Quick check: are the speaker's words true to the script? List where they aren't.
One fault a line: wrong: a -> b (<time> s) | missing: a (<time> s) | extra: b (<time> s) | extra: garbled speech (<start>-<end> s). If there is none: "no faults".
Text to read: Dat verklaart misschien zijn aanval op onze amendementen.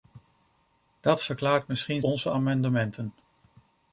missing: zijn aanval op (2.0 s)